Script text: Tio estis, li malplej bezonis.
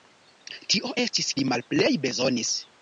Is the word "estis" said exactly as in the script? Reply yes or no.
yes